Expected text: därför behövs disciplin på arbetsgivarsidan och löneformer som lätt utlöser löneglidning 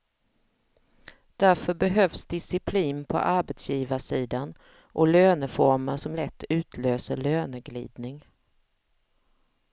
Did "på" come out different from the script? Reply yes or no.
no